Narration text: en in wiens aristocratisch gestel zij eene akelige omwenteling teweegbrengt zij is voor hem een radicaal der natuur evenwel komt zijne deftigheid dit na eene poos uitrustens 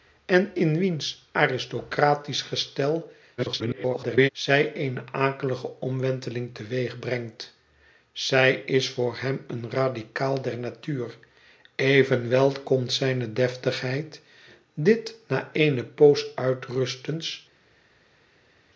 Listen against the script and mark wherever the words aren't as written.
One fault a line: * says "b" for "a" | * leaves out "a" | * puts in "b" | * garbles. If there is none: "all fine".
* garbles